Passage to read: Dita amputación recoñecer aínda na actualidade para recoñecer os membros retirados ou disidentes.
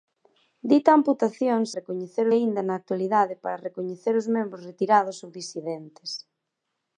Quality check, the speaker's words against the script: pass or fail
pass